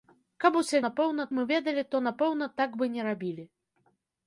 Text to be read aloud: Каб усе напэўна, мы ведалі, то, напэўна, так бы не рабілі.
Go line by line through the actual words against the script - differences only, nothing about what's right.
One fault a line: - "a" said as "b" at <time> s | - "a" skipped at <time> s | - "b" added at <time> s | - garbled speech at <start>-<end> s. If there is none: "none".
none